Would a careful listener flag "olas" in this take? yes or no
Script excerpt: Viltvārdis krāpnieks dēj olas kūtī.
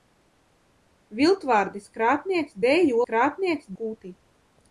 yes